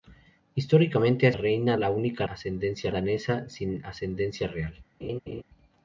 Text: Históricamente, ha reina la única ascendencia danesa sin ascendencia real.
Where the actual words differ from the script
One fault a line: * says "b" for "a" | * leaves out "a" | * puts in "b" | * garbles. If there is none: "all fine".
all fine